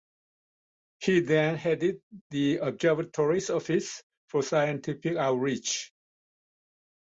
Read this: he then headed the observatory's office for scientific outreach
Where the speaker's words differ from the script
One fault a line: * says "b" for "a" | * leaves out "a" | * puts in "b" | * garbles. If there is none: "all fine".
all fine